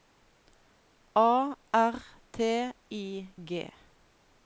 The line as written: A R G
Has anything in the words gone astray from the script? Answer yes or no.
yes